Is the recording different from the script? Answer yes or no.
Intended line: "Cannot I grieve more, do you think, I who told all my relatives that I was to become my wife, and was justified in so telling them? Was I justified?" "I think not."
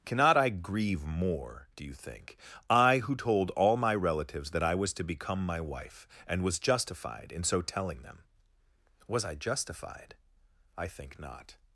no